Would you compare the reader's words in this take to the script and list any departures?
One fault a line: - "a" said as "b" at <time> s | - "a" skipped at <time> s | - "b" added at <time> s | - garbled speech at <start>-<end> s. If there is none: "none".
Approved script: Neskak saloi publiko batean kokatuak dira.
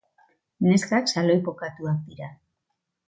- "publiko batean" skipped at 1.4 s